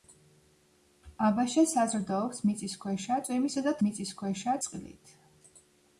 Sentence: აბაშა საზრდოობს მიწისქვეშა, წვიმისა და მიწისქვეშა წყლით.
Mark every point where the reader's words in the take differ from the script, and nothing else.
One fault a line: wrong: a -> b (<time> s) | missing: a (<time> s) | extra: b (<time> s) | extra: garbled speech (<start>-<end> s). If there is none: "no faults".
no faults